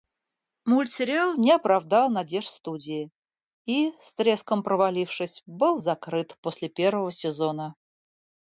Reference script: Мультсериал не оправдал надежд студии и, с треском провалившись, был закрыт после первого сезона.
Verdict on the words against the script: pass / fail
pass